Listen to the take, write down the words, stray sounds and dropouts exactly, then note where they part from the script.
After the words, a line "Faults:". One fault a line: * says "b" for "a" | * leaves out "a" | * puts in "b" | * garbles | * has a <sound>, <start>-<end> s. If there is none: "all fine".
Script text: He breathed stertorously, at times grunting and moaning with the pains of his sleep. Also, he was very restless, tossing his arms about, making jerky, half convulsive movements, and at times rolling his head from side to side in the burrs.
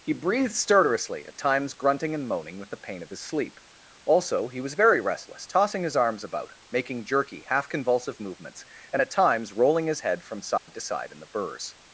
He breathed stertorously, at times grunting and moaning with the pain of his sleep. Also, he was very restless, tossing his arms about, making jerky, half convulsive movements, and at times rolling his head from side to side in the burrs.
Faults:
* says "pain" for "pains"
* has a dropout, 10.6-10.7 s